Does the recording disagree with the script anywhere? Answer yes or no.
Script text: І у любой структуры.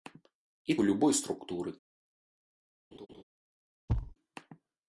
no